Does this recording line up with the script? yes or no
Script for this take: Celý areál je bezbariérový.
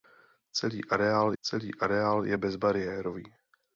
no